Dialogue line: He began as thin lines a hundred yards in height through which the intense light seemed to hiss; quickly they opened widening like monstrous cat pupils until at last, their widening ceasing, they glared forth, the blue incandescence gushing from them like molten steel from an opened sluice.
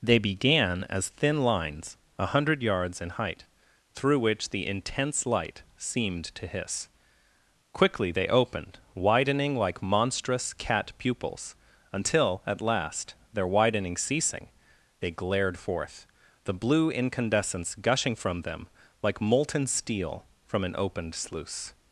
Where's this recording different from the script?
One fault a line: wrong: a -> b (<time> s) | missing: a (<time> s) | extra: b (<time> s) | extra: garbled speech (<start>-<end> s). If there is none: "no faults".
wrong: He -> They (0.0 s)